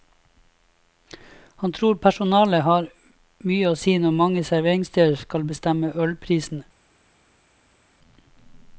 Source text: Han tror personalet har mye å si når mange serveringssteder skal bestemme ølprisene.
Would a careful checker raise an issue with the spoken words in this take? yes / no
no